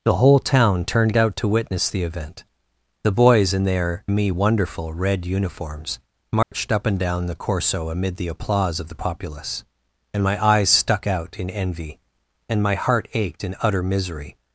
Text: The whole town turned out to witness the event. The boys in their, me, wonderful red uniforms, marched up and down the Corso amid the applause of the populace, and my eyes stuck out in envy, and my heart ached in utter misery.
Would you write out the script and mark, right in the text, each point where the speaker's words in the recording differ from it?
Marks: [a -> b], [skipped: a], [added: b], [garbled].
The whole town turned out to witness the event. The boys in their, me, wonderful red uniforms, marched up and down the Corso amid the applause of the populace, and my eyes stuck out in envy, and my heart ached in utter misery.